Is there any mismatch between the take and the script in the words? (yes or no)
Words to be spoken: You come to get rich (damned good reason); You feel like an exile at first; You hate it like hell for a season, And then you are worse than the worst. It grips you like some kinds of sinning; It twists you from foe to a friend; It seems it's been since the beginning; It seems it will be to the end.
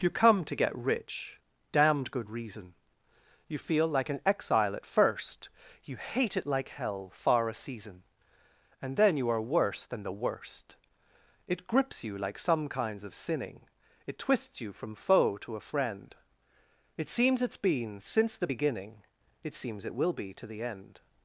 yes